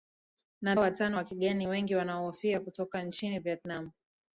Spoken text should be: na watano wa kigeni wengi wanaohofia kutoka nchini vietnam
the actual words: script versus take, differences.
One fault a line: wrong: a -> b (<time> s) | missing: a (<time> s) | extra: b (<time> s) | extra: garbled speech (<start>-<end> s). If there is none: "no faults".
no faults